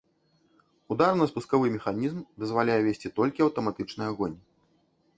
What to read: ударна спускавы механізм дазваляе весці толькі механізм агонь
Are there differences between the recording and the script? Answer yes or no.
yes